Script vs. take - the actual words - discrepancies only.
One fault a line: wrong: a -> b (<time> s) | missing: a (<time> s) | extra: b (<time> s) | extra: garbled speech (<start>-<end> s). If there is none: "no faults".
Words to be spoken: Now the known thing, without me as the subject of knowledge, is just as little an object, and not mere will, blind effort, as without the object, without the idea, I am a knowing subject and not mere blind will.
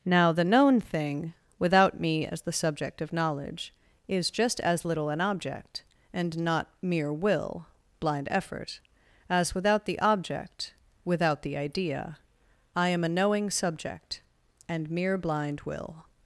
missing: not (14.9 s)